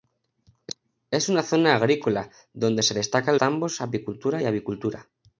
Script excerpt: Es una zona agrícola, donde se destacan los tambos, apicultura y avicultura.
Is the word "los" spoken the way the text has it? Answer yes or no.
no